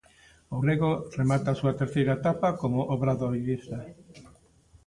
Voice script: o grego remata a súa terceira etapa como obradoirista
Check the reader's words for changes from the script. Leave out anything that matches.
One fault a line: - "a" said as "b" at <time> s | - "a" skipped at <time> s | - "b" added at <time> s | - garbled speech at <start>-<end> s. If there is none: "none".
none